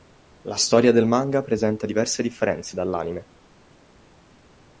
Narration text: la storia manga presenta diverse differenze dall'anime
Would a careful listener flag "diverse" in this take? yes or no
no